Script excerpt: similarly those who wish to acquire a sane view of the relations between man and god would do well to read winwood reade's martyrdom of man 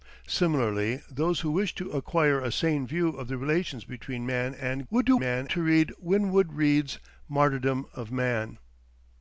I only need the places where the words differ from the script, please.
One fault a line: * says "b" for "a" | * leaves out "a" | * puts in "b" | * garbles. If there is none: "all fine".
* leaves out "god"
* says "man" for "well"